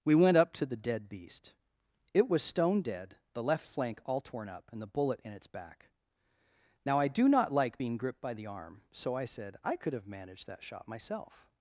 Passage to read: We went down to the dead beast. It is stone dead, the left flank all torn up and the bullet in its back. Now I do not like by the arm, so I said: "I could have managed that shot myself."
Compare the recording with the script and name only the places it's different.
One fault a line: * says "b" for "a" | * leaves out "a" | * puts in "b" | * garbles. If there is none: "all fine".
* says "up" for "down"
* says "was" for "is"
* puts in "being gripped"